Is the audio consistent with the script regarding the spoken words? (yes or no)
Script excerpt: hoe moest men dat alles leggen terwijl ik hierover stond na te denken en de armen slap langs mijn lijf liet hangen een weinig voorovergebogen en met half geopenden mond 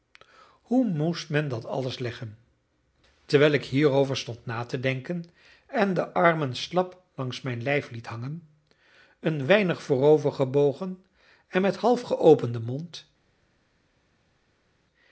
yes